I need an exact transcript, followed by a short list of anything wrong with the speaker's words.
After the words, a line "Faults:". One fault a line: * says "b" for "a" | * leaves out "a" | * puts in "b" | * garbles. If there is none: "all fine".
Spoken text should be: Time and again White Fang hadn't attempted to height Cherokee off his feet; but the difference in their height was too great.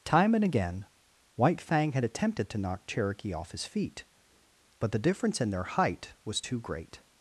Time and again White Fang had attempted to knock Cherokee off his feet; but the difference in their height was too great.
Faults:
* says "had" for "hadn't"
* says "knock" for "height"